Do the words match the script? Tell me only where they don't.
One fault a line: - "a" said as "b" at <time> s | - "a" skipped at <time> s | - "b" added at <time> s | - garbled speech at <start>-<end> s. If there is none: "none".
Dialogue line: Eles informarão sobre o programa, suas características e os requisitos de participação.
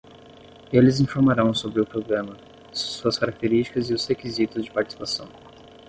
none